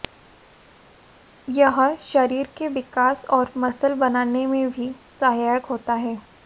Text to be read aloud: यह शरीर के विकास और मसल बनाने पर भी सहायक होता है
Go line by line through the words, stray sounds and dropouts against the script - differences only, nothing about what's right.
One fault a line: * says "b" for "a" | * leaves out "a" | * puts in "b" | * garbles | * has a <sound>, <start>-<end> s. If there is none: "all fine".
* says "में" for "पर"